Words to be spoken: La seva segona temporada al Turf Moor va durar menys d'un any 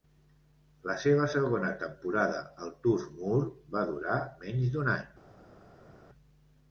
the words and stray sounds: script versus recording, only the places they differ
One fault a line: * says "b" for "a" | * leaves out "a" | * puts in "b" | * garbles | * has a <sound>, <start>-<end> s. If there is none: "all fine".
all fine